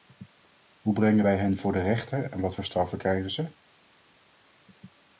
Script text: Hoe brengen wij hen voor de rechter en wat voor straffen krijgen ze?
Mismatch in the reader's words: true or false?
false